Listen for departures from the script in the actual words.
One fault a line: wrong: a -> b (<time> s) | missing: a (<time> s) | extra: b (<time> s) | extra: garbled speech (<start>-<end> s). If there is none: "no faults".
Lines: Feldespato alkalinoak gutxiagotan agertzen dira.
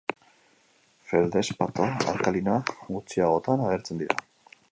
no faults